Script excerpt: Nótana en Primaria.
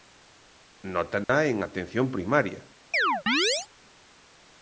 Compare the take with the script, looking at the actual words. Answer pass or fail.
fail